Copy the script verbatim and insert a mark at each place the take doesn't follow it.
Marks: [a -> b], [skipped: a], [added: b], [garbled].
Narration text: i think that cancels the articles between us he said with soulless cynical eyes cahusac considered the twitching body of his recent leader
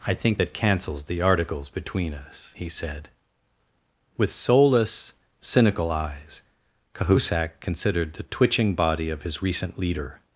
i think that cancels the articles between us he said with soulless cynical eyes cahusac considered the twitching body of his recent leader